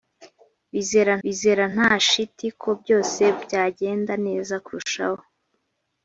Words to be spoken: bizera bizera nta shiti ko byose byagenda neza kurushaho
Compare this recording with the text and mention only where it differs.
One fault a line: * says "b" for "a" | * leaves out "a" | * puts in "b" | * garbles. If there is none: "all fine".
all fine